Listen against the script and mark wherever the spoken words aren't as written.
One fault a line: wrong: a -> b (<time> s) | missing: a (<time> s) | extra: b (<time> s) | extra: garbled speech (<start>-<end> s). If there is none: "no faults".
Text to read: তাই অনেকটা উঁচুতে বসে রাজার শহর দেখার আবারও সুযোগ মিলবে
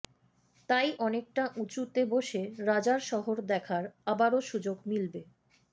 no faults